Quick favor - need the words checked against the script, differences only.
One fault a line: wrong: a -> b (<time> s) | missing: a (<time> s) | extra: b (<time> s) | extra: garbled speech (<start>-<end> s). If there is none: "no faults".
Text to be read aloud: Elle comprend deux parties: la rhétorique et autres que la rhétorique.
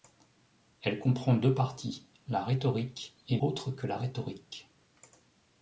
no faults